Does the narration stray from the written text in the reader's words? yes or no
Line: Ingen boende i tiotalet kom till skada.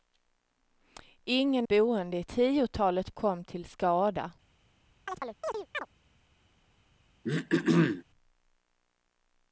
no